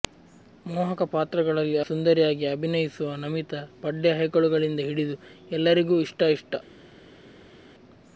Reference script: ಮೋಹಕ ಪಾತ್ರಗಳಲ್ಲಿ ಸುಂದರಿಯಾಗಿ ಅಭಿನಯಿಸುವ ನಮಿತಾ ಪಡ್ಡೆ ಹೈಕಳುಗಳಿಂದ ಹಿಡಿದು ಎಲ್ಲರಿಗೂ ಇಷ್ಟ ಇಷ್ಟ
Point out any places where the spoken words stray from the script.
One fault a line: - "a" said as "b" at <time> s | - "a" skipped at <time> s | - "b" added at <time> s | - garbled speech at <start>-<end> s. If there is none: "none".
none